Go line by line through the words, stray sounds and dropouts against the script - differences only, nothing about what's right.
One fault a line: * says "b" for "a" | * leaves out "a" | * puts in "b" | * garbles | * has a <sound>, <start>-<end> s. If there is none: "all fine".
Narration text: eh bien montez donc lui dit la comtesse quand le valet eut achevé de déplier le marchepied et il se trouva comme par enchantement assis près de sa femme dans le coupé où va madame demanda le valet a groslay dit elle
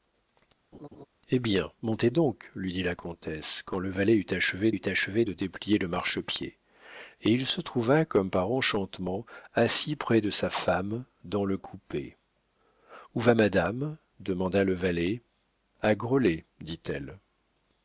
* has a laugh, 0.7-1.1 s
* puts in "eut achevé"